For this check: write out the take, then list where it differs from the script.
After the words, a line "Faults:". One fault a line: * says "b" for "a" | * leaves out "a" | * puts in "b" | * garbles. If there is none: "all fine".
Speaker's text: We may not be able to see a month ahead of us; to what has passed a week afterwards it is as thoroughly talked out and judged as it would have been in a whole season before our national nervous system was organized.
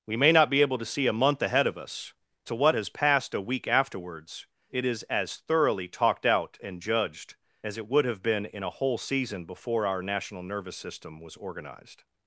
We may not be able to see a month ahead of us; to what has passed a week afterwards it is as thoroughly talked out and judged as it would have been in a whole season before our national nervous system was organized.
Faults:
all fine